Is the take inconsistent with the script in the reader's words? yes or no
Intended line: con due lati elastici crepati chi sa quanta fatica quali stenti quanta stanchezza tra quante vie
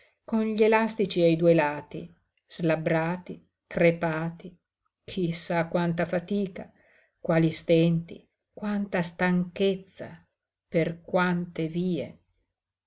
yes